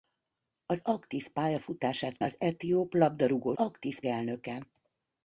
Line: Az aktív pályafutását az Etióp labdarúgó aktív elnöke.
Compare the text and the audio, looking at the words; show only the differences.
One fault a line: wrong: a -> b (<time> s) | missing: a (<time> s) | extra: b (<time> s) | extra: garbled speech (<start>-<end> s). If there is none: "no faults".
no faults